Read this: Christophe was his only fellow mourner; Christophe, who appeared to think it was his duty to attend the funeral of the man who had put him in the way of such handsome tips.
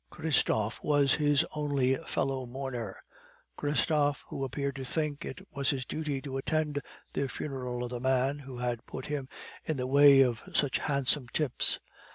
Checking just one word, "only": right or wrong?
right